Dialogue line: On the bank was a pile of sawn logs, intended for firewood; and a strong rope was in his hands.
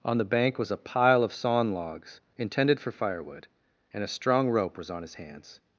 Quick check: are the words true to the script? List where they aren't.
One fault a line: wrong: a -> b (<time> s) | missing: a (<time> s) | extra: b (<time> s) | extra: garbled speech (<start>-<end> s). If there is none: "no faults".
wrong: in -> on (4.9 s)